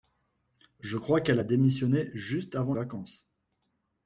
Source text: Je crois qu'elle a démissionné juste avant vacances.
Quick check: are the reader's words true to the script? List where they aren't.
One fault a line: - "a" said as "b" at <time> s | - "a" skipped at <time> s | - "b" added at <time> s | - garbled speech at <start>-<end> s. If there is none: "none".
none